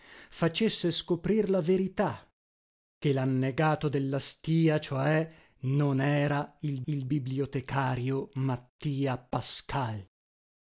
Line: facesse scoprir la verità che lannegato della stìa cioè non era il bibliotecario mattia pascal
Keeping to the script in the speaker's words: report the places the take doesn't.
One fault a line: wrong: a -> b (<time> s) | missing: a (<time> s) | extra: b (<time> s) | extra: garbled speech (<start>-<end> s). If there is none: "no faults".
extra: il (6.9 s)